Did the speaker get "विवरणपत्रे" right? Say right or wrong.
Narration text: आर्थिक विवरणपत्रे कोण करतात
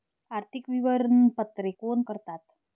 right